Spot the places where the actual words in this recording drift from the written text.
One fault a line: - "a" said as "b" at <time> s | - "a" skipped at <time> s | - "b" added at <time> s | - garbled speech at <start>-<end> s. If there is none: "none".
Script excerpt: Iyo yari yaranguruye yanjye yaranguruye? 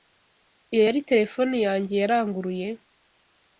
- "yaranguruye" said as "terefone" at 1.1 s